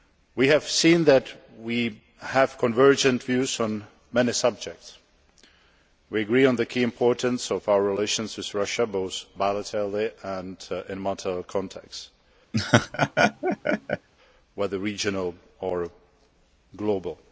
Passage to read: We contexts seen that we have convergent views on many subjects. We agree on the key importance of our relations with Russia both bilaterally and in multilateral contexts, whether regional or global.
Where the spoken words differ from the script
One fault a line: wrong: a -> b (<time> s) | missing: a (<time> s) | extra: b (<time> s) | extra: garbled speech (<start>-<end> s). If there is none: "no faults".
wrong: contexts -> have (0.5 s)